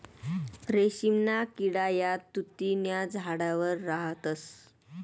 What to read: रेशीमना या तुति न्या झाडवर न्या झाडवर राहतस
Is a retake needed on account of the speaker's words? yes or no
yes